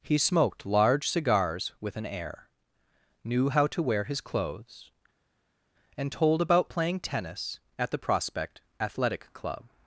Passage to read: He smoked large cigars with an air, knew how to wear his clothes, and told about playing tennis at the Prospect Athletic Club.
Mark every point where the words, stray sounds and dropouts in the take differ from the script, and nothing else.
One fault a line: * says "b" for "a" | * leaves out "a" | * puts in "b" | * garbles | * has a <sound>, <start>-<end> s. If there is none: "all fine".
all fine